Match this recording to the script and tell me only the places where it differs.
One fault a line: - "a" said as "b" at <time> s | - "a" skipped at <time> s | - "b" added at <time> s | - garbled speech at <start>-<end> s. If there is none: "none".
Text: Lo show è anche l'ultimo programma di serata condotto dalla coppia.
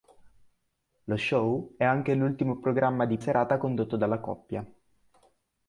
none